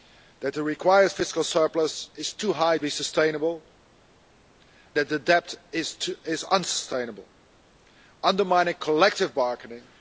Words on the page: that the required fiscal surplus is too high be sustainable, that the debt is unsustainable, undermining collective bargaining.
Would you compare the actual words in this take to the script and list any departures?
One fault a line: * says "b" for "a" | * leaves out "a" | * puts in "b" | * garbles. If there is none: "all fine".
all fine